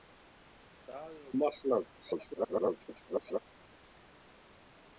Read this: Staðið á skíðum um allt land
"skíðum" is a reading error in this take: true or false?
true